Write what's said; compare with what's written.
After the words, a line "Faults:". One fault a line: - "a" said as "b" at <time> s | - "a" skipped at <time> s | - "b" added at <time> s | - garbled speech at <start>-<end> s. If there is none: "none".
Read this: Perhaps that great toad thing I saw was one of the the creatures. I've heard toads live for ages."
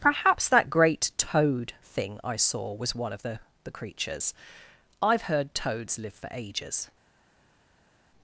Perhaps that great toad thing I saw was one of the the creatures. I've heard toads live for ages."
Faults:
none